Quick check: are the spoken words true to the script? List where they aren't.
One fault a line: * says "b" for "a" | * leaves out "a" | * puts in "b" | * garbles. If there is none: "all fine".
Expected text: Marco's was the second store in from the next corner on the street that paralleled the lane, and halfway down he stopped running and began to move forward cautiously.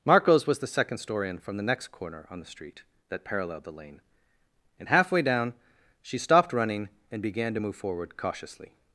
* says "she" for "he"